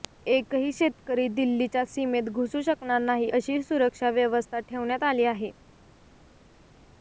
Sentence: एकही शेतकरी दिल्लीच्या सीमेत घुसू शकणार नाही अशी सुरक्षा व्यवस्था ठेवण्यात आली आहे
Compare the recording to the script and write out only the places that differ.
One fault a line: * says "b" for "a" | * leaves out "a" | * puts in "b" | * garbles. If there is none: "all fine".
all fine